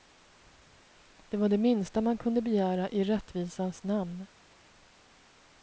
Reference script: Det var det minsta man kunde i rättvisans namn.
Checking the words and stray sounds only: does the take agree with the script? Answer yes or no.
no